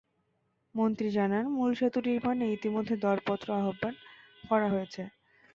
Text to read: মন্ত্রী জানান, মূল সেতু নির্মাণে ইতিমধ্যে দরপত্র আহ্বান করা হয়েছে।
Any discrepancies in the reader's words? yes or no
no